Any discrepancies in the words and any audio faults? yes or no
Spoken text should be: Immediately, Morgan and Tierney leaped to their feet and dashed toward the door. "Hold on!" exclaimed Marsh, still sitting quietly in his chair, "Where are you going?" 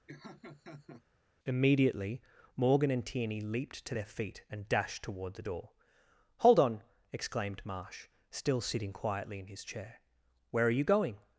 yes